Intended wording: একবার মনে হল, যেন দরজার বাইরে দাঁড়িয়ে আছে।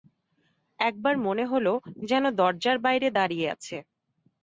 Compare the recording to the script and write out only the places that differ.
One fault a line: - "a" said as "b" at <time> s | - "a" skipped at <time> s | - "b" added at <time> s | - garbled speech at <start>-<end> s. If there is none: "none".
none